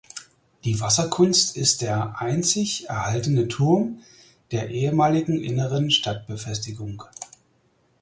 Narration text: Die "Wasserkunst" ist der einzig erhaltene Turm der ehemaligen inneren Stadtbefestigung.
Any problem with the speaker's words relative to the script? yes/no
no